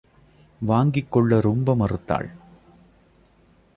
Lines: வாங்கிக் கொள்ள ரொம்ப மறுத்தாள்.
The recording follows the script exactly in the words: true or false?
true